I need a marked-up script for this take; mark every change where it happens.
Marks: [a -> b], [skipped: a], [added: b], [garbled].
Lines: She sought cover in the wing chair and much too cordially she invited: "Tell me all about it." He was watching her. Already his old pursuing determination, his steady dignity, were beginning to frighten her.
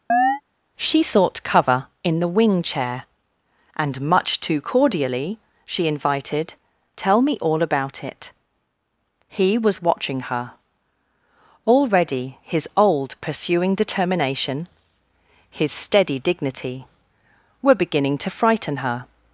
She sought cover in the wing chair and much too cordially she invited: "Tell me all about it." He was watching her. Already his old pursuing determination, his steady dignity, were beginning to frighten her.